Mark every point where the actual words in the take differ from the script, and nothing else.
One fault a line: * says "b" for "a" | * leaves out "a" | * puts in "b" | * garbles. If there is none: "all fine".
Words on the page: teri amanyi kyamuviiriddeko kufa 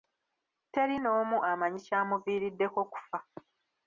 * puts in "n'omu"